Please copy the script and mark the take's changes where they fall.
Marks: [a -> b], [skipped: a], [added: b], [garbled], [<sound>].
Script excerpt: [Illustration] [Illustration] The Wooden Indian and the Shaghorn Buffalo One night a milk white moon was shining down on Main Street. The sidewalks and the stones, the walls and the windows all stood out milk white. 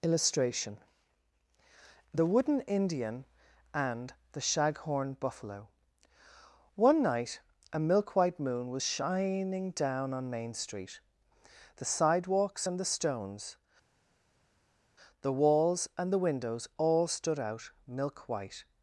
[Illustration] [skipped: [Illustration]] The Wooden Indian and the Shaghorn Buffalo One night a milk white moon was shining down on Main Street. The sidewalks and the stones, the walls and the windows all stood out milk white.